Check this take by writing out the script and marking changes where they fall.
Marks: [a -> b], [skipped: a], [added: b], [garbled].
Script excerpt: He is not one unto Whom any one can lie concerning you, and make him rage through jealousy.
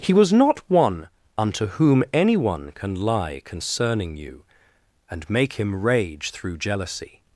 He [is -> was] not one unto Whom any one can lie concerning you, and make him rage through jealousy.